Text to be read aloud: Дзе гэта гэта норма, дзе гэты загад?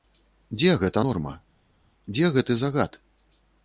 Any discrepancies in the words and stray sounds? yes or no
yes